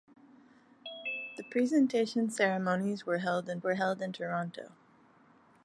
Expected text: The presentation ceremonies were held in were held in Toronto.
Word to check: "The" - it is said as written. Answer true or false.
true